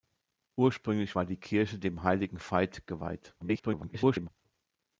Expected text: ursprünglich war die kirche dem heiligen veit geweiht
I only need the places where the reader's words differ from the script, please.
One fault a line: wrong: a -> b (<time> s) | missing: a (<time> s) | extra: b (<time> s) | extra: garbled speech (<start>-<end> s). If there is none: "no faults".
extra: garbled speech (3.4-4.3 s)